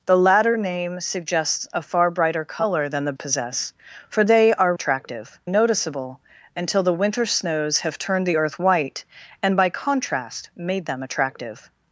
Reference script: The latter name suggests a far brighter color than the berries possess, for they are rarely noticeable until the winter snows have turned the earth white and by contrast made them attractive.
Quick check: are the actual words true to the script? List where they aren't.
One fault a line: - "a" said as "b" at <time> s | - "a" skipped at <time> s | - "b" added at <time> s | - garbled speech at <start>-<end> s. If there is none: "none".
- "berries" skipped at 3.1 s
- "rarely" said as "attractive" at 4.7 s